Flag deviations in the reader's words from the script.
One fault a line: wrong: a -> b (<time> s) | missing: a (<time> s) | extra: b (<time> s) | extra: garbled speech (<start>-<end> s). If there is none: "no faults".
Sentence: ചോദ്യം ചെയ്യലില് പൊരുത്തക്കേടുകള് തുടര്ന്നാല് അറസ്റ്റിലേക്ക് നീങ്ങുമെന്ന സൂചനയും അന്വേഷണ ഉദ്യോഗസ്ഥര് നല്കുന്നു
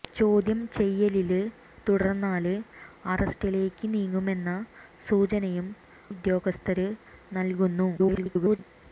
missing: പൊരുത്തക്കേടുകള് (1.4 s)
missing: അന്വേഷണ (5.7 s)
extra: garbled speech (8.0-8.6 s)